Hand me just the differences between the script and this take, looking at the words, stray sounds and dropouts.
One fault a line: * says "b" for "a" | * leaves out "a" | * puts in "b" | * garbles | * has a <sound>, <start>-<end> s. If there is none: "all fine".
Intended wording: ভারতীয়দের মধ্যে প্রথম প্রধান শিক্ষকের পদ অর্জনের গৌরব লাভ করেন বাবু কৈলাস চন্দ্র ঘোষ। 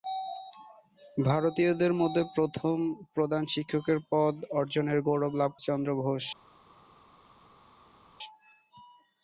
* leaves out "করেন বাবু কৈলাস"